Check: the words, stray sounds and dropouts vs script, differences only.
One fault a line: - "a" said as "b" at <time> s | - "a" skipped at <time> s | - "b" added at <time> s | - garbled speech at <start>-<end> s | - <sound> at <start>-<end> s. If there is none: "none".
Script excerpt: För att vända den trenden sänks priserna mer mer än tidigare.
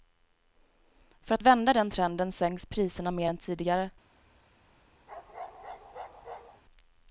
- "mer" skipped at 3.3 s
- bark at 5.1-6.6 s